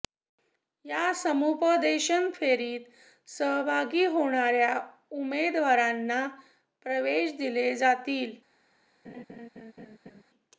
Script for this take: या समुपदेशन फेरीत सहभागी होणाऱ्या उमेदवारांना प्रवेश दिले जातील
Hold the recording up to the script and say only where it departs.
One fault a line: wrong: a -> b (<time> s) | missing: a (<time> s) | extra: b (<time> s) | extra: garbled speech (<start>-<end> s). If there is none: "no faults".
no faults